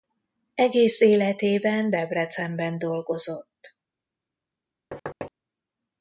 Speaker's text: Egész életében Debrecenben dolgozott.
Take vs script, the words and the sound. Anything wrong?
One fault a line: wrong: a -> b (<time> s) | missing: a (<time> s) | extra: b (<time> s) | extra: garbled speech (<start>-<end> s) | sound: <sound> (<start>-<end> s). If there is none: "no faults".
sound: thud (4.9-5.3 s)